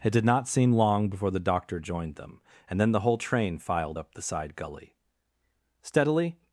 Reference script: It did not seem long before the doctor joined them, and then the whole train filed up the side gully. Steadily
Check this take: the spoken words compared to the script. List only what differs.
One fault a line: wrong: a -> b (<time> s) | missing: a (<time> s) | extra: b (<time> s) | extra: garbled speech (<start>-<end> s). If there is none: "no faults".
no faults